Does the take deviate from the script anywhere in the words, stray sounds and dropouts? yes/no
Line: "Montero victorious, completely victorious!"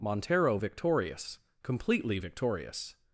no